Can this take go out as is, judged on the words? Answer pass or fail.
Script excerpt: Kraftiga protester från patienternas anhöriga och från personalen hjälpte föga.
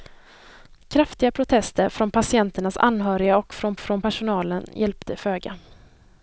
fail